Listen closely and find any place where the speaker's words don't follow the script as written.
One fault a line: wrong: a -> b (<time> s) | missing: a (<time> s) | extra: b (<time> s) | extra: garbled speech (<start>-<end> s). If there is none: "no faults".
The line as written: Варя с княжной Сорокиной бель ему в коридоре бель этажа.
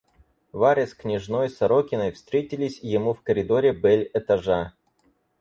wrong: бель -> встретились (2.1 s)